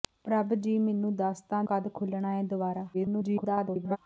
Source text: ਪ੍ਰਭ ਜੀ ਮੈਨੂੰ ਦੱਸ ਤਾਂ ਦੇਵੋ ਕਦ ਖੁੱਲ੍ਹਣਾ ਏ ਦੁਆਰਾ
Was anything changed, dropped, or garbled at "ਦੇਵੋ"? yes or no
yes